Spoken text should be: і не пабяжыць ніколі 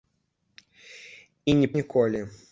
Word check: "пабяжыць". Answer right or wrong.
wrong